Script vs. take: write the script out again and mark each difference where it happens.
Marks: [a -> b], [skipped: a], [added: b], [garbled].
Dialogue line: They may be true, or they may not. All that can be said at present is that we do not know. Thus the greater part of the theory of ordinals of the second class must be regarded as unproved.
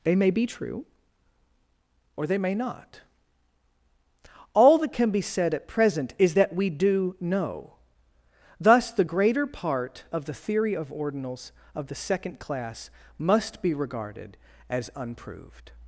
They may be true, or they may not. All that can be said at present is that we do [skipped: not] know. Thus the greater part of the theory of ordinals of the second class must be regarded as unproved.